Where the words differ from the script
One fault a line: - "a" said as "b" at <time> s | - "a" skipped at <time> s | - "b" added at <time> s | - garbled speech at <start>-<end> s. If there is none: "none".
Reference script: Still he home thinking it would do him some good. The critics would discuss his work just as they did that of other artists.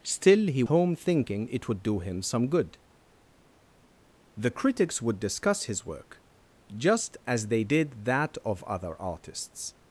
none